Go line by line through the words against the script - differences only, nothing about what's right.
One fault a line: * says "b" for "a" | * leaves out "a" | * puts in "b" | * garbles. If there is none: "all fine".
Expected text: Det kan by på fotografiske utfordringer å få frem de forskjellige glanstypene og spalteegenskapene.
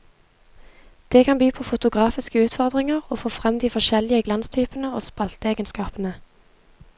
all fine